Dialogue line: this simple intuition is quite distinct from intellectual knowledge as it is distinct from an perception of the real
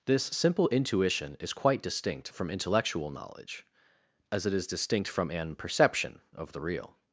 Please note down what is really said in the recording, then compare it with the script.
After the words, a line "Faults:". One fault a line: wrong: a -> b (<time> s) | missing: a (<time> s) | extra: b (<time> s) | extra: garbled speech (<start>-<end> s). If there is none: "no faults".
this simple intuition is quite distinct from intellectual knowledge as it is distinct from an perception of the real
Faults:
no faults